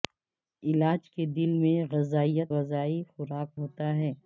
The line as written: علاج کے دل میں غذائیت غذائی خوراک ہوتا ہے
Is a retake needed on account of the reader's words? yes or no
no